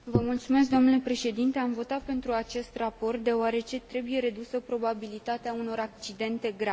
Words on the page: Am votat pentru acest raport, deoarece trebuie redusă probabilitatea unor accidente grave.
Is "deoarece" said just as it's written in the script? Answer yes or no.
yes